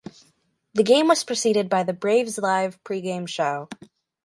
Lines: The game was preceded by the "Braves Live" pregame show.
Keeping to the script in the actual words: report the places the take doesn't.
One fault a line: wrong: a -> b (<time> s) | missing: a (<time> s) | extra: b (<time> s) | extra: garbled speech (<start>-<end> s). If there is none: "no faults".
no faults